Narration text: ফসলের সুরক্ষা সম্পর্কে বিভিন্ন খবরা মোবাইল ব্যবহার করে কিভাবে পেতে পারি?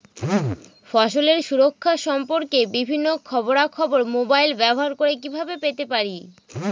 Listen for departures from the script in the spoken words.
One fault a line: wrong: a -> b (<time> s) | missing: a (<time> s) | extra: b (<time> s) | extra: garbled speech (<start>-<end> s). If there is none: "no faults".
extra: খবর (3.7 s)